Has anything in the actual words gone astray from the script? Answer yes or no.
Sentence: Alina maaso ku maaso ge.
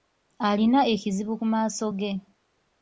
yes